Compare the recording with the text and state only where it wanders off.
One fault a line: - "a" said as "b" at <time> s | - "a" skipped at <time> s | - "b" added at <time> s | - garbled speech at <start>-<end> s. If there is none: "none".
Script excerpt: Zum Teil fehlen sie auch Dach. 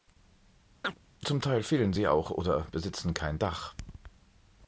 - "oder besitzen kein" added at 2.3 s